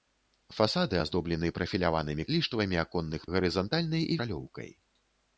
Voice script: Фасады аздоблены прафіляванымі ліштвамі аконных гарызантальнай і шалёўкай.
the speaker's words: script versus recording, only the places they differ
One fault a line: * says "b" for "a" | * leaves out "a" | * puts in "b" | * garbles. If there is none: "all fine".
all fine